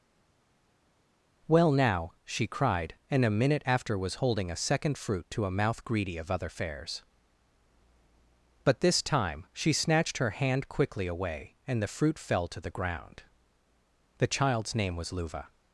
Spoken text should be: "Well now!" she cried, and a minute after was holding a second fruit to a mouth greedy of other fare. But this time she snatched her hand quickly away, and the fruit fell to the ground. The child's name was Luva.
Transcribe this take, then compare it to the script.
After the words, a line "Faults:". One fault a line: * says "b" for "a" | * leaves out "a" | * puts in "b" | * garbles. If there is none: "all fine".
"Well now!" she cried, and a minute after was holding a second fruit to a mouth greedy of other fares. But this time she snatched her hand quickly away, and the fruit fell to the ground. The child's name was Luva.
Faults:
* says "fares" for "fare"